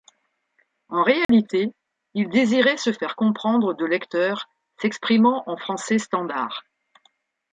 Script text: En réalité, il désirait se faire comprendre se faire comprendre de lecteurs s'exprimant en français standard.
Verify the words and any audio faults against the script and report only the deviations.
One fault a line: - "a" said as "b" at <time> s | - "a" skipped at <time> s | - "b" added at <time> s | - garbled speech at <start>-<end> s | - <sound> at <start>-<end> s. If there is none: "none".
- dropout at 1.2-1.3 s
- "se faire comprendre" skipped at 3.8 s